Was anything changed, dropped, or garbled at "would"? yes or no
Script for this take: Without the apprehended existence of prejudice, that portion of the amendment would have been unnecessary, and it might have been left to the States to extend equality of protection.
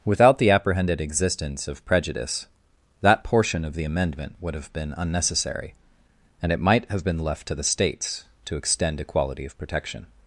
no